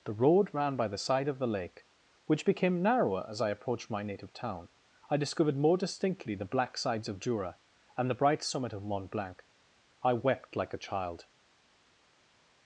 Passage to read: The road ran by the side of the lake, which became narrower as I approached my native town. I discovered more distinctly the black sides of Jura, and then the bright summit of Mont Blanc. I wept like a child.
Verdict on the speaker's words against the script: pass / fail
fail